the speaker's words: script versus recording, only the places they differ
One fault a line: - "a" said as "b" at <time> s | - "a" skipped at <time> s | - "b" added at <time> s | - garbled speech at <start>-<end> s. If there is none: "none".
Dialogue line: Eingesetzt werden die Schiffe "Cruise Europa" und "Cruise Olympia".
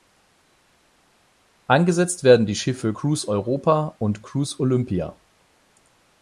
none